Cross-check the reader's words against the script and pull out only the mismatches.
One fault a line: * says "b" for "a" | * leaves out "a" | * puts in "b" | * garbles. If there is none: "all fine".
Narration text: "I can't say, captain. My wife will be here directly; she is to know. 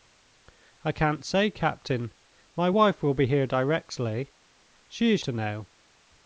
all fine